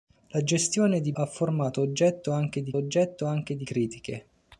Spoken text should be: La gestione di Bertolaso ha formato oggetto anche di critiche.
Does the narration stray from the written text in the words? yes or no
yes